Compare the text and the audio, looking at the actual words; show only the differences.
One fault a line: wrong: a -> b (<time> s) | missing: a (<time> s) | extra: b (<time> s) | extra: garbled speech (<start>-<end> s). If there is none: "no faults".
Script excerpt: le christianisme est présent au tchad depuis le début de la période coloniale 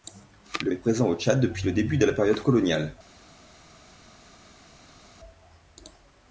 missing: christianisme (0.7 s)